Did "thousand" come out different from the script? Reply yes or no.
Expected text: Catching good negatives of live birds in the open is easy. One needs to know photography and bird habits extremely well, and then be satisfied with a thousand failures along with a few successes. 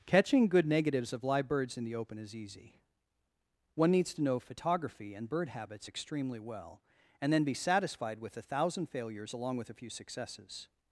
no